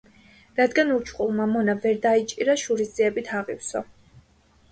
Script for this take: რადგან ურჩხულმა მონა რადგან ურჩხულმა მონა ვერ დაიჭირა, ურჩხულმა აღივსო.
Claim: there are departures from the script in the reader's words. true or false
true